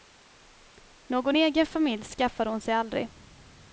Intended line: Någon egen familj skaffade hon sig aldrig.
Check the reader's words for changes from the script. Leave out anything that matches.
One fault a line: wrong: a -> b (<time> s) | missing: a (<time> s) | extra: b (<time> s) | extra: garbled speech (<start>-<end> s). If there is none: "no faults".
no faults